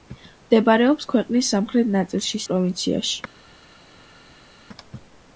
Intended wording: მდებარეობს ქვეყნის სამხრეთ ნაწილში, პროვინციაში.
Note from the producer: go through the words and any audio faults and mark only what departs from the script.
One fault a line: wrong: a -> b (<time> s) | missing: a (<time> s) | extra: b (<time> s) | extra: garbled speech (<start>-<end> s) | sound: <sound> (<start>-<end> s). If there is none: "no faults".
no faults